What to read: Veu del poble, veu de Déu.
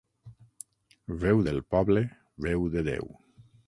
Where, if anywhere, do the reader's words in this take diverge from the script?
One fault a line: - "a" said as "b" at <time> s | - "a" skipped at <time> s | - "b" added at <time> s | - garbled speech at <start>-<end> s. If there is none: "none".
none